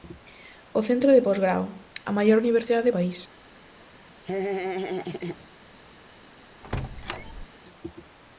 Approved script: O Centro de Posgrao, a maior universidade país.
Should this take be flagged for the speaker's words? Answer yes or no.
no